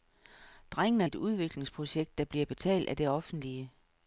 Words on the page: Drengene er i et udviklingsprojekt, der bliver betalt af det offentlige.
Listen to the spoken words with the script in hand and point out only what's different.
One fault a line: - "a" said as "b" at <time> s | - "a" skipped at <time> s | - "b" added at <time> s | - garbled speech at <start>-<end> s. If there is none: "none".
none